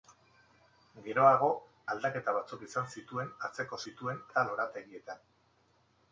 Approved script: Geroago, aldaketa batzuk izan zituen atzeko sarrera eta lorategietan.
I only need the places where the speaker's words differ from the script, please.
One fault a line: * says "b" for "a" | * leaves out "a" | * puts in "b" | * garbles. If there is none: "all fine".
* says "zituen" for "sarrera"